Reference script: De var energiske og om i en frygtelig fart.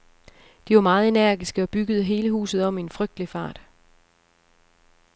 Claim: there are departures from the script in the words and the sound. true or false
true